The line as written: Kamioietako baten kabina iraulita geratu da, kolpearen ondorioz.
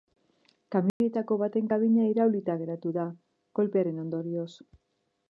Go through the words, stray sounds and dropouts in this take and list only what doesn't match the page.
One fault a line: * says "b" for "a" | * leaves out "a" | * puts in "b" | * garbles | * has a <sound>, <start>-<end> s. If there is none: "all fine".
* has a dropout, 0.9-1.0 s